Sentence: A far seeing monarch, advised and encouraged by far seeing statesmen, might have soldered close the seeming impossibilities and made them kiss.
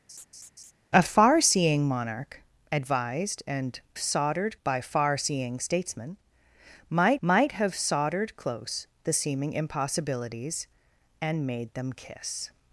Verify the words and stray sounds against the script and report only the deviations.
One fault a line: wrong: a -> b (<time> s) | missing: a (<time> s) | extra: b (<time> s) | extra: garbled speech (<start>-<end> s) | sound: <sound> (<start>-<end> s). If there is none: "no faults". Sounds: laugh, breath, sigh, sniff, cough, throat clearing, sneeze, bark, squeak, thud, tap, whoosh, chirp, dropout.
sound: laugh (0.1-0.7 s)
wrong: encouraged -> soldered (4.0 s)
extra: might (7.2 s)